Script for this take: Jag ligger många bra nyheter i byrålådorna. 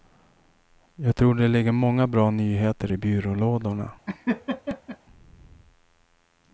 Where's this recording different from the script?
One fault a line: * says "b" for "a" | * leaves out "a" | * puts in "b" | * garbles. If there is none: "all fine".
* puts in "tror det"